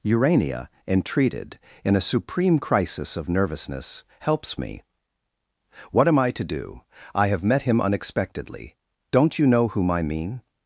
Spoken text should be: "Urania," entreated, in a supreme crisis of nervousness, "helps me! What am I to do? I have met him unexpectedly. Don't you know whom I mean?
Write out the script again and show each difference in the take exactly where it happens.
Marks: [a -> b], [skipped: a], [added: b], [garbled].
"Urania," entreated, in a supreme crisis of nervousness, "helps me! What am I to do? I have met him unexpectedly. Don't you know whom I mean?